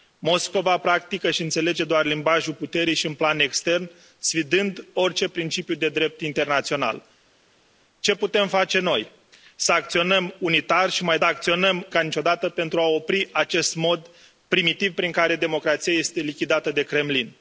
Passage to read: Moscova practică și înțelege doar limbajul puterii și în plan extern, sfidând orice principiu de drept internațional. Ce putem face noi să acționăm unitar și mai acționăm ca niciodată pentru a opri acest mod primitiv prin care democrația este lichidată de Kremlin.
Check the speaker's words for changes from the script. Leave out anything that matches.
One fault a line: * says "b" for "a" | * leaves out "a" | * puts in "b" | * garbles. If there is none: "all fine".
all fine